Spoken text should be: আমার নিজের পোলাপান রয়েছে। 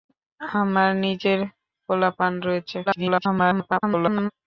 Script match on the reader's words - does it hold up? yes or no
no